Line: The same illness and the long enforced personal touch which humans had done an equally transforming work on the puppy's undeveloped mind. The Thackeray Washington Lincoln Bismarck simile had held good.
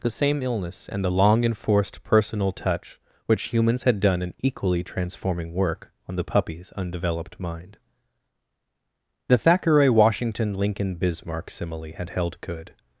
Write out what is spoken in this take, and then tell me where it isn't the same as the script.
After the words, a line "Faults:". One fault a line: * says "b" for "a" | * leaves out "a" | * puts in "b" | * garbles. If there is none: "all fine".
The same illness and the long enforced personal touch which humans had done an equally transforming work on the puppy's undeveloped mind. The Thackeray Washington Lincoln Bismarck simile had held good.
Faults:
all fine